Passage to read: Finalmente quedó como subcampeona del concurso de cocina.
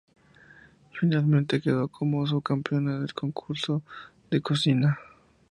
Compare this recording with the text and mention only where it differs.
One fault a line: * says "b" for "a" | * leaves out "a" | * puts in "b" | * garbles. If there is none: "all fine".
all fine